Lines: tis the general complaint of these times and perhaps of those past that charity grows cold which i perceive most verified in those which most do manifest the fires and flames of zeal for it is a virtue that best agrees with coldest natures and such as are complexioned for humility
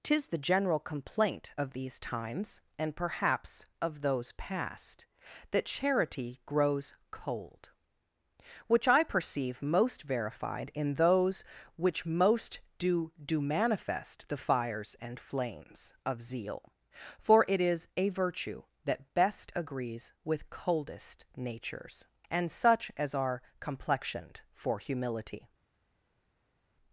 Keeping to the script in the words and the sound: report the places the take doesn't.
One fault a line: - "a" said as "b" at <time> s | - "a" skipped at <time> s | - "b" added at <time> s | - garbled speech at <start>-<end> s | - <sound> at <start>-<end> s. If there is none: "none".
- "do" added at 13.2 s